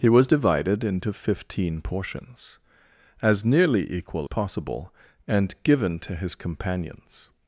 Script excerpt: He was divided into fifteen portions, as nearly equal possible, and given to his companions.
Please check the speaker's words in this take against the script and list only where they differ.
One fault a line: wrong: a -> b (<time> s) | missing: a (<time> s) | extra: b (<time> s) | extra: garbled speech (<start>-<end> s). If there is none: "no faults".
no faults